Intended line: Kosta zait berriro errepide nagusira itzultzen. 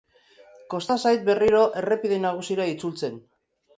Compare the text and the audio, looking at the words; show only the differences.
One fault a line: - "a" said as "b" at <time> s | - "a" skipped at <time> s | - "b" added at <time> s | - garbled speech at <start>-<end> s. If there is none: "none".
none